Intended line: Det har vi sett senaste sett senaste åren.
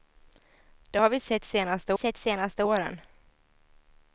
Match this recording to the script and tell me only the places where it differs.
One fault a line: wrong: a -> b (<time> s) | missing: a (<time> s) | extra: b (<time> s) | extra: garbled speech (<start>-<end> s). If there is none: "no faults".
no faults